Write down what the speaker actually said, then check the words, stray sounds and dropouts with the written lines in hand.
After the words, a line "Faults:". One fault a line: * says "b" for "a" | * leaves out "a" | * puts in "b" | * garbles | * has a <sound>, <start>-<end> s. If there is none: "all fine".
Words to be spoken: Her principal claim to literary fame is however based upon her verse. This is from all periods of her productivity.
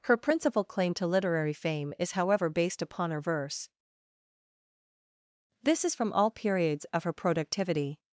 Her principal claim to literary fame is however based upon her verse. This is from all periods of her productivity.
Faults:
all fine